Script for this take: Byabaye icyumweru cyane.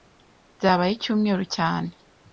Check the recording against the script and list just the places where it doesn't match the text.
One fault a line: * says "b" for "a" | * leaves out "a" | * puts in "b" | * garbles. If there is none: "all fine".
all fine